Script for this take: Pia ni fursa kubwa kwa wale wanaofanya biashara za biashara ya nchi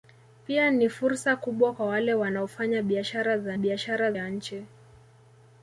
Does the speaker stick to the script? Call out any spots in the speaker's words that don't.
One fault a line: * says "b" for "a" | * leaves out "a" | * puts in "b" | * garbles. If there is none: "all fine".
all fine